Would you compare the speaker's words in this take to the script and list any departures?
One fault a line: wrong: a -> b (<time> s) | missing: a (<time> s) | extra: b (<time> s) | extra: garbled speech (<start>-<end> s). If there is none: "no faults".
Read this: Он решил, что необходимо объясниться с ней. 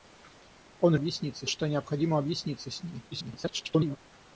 wrong: решил -> объясниться (0.9 s)
extra: garbled speech (3.1-4.0 s)